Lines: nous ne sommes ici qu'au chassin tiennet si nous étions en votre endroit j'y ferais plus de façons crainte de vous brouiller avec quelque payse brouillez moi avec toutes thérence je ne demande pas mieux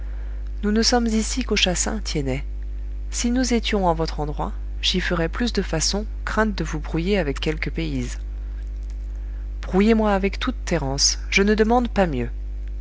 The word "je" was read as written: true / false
true